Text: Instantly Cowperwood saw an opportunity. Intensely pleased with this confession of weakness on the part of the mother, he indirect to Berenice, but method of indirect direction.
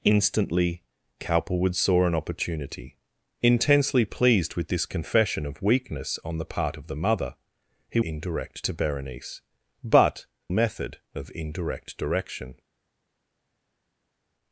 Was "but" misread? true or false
false